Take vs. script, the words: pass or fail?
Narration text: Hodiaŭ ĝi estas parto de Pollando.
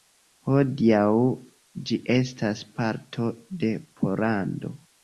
pass